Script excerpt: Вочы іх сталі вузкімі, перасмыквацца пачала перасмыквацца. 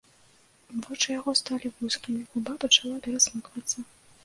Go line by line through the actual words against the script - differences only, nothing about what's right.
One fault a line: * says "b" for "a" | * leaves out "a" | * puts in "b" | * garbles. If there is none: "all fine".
* says "яго" for "іх"
* says "губа" for "перасмыквацца"